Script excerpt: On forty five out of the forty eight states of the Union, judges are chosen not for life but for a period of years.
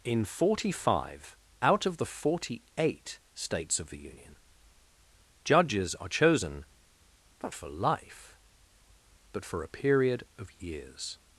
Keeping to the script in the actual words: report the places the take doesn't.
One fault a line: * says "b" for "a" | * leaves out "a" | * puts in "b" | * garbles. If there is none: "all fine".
* says "In" for "On"